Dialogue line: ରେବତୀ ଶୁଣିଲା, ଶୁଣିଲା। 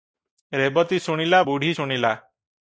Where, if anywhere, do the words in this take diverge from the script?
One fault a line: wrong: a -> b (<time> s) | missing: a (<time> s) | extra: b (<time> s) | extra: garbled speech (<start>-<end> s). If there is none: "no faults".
extra: ବୁଢ଼ୀ (1.4 s)